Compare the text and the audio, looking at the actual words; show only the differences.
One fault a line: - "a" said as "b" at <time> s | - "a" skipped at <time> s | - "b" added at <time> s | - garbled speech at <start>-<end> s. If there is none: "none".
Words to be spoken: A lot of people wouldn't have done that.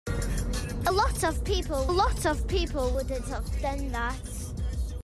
- "lot of people" added at 1.9 s